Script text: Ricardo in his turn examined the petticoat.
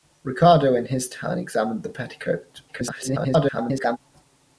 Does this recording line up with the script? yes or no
no